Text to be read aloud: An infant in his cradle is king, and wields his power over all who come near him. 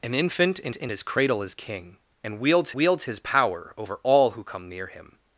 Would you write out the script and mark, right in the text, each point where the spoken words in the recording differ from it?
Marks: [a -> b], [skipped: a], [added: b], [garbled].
An infant in [added: in] his cradle is king, and wields [added: wields] his power over all who come near him.